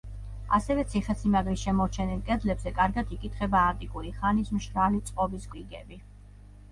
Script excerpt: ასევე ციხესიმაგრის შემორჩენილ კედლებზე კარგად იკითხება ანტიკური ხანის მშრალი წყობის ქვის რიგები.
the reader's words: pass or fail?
fail